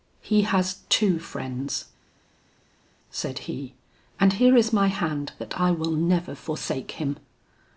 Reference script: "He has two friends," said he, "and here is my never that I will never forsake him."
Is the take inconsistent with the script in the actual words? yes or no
yes